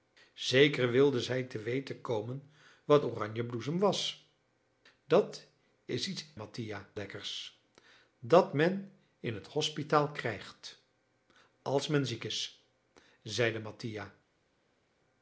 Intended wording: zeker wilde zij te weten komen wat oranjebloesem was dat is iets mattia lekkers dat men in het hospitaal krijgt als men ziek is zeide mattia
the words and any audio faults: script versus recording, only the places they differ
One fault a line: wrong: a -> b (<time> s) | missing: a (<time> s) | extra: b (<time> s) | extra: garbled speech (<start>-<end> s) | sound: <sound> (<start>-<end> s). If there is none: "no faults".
no faults